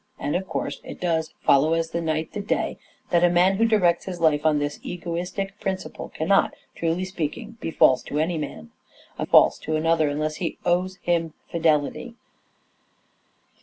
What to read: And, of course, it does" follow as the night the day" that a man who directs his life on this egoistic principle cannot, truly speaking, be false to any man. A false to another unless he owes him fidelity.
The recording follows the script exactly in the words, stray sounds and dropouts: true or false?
true